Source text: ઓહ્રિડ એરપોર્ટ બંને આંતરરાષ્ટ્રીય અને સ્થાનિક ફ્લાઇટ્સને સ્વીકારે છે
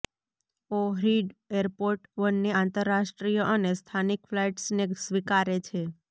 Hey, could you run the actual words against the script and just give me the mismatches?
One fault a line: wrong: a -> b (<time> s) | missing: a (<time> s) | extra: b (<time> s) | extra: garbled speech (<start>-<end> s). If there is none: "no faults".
no faults